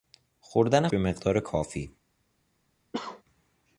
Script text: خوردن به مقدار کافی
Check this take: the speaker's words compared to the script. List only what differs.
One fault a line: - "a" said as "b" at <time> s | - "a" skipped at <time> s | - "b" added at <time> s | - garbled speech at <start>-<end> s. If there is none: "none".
none